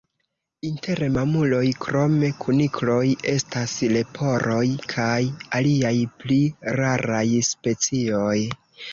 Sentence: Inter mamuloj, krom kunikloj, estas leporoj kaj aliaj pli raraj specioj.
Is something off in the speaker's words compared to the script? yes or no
no